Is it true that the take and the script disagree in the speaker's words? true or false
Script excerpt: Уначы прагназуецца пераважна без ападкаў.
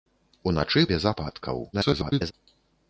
true